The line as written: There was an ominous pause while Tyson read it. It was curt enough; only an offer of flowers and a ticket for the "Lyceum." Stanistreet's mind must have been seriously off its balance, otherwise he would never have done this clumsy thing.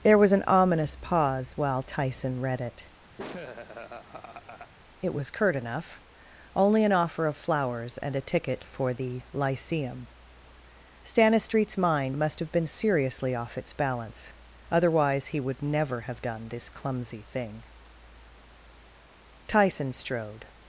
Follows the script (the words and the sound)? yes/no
no